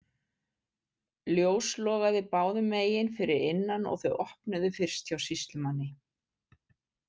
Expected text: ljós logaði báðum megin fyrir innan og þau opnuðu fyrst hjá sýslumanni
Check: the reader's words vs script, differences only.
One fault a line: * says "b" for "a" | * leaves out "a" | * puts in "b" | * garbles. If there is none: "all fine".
all fine